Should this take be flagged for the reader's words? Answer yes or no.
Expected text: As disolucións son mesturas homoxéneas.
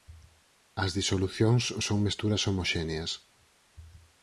no